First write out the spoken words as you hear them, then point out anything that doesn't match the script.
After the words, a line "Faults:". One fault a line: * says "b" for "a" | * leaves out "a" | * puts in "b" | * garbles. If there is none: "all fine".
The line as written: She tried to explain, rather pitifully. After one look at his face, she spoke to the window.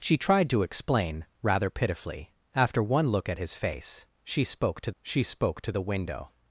She tried to explain, rather pitifully. After one look at his face, she spoke to she spoke to the window.
Faults:
* puts in "she spoke to"